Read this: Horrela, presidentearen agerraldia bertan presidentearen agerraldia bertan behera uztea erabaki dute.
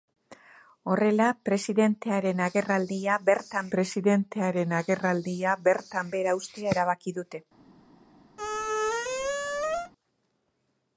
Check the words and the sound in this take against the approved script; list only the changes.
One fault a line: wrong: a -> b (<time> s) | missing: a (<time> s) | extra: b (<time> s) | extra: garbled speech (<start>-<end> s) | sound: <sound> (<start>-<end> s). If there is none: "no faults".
sound: squeak (8.4-9.9 s)